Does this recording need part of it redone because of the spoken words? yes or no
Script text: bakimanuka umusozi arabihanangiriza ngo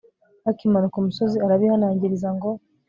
no